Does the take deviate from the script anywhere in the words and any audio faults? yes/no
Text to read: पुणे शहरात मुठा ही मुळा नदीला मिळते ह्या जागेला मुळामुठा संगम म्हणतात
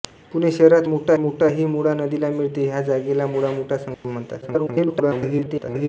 yes